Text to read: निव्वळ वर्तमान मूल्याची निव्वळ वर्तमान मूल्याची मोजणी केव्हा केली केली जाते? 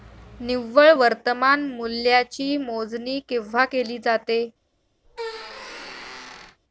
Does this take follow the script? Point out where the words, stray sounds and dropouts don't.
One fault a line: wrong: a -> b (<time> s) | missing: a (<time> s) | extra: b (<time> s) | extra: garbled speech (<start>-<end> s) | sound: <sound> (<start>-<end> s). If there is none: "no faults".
missing: निव्वळ वर्तमान मूल्याची (2.5 s)
missing: केली (4.0 s)
sound: squeak (5.0-6.6 s)